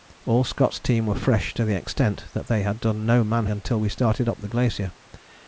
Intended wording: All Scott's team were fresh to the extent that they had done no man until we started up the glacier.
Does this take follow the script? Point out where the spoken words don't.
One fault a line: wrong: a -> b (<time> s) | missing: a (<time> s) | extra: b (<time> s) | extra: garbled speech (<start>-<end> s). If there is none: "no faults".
no faults